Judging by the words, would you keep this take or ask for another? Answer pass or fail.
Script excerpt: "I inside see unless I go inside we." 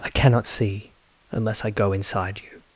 fail